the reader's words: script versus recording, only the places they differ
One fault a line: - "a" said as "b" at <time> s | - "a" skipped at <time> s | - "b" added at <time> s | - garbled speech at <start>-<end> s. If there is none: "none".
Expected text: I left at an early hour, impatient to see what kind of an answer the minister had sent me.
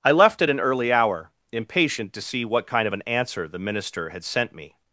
none